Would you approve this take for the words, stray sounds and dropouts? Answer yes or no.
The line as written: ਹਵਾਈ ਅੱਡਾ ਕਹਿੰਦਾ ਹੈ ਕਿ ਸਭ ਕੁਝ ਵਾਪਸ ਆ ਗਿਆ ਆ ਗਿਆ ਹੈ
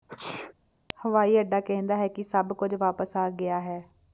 no